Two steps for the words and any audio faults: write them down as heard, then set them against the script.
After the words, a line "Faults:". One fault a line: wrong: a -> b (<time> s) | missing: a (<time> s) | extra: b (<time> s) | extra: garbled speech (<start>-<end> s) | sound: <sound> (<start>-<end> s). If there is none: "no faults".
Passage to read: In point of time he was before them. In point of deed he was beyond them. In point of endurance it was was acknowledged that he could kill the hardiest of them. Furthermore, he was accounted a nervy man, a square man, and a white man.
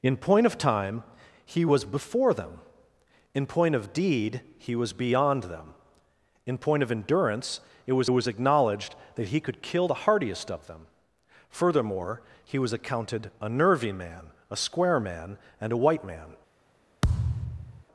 In point of time he was before them. In point of deed he was beyond them. In point of endurance it was was acknowledged that he could kill the hardiest of them. Furthermore, he was accounted a nervy man, a square man, and a white man.
Faults:
sound: thud (17.0-17.8 s)